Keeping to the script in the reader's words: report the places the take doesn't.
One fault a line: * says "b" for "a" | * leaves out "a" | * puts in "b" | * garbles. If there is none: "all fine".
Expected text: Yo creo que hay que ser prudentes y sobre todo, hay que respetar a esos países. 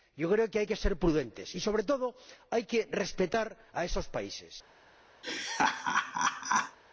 all fine